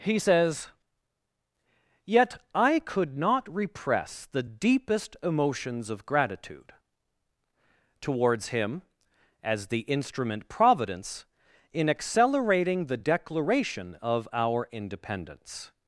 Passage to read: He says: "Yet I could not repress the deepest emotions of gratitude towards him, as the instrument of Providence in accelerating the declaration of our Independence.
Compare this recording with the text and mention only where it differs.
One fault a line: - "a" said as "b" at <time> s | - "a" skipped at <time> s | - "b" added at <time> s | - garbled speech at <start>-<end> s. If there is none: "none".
- "of" skipped at 10.5 s